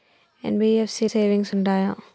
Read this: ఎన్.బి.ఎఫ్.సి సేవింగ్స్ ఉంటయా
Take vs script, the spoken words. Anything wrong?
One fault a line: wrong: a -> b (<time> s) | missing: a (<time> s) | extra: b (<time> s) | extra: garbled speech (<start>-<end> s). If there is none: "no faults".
no faults